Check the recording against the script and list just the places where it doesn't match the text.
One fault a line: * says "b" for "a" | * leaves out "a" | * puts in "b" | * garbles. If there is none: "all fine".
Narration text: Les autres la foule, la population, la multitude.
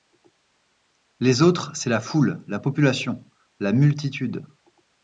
* puts in "c'est"